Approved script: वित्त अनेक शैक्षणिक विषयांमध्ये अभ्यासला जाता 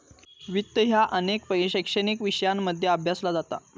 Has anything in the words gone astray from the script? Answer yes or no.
yes